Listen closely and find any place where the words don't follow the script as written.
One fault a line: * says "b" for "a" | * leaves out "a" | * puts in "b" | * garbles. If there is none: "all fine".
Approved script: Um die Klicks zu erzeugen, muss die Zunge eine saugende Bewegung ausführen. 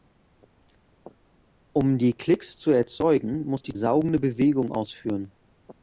* leaves out "Zunge eine"